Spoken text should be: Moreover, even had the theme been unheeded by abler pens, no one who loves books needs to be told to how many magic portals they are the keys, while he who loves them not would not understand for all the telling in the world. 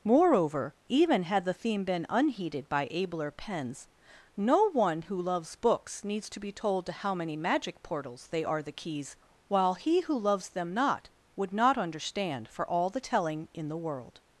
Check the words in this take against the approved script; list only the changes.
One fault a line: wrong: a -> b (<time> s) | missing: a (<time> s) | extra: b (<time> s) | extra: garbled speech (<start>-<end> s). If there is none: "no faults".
no faults